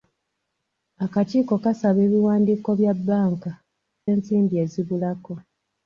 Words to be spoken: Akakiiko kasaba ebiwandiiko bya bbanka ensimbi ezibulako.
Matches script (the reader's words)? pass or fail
pass